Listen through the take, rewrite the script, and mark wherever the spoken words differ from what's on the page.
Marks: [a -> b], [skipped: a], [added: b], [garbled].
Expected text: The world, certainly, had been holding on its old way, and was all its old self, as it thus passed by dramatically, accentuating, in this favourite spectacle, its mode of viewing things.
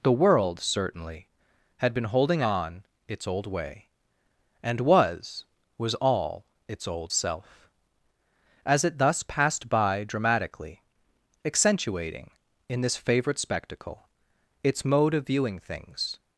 The world, certainly, had been holding on its old way, and was [added: was] all its old self, as it thus passed by dramatically, accentuating, in this favourite spectacle, its mode of viewing things.